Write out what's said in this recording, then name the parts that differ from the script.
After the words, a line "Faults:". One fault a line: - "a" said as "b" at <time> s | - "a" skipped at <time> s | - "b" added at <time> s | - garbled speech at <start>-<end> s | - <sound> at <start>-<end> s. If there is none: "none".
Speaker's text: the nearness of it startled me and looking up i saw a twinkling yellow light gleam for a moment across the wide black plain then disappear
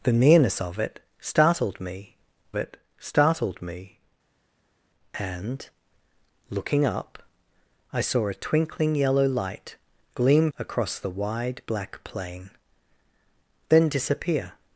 the nearness of it startled me it startled me and looking up i saw a twinkling yellow light gleam across the wide black plain then disappear
Faults:
- "it startled me" added at 2.6 s
- "for a moment" skipped at 10.5 s